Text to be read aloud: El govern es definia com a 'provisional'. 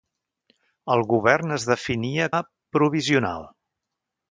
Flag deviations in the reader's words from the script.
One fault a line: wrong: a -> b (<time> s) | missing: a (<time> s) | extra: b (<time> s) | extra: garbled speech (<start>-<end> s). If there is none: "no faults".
missing: com (2.3 s)